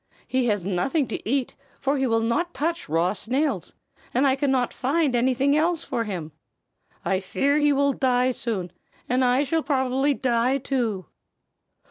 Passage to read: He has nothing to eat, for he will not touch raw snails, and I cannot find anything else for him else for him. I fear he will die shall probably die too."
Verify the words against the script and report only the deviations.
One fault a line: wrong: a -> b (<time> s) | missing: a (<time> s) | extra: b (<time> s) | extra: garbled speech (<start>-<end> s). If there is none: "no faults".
missing: else for him (6.3 s)
extra: soon and I (8.3 s)